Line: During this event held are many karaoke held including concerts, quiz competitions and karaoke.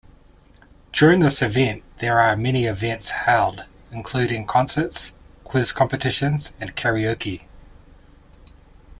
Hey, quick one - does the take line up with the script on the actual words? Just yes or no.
no